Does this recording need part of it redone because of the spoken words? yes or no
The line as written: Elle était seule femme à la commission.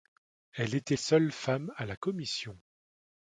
no